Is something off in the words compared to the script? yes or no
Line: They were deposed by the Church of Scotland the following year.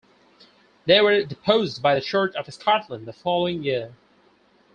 no